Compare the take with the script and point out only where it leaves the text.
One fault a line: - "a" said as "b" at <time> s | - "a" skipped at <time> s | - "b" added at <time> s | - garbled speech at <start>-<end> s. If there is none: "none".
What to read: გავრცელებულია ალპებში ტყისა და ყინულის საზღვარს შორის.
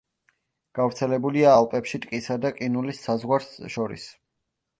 none